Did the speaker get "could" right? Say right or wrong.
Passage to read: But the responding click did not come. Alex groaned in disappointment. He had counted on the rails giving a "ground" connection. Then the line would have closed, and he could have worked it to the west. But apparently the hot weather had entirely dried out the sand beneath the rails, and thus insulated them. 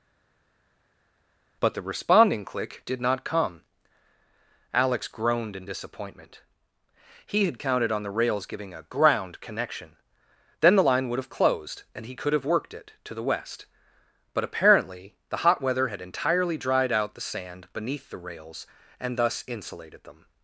right